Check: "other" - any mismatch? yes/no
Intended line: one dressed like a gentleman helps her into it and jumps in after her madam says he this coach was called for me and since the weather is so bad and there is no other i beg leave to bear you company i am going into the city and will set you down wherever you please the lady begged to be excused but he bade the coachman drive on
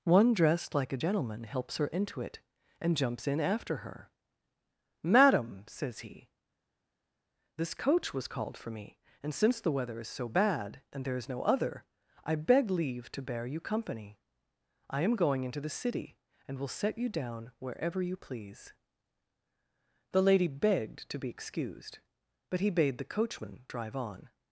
no